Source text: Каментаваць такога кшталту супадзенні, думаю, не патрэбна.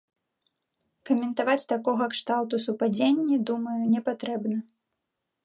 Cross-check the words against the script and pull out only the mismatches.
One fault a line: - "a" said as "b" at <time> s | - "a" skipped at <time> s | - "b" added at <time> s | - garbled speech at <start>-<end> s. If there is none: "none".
none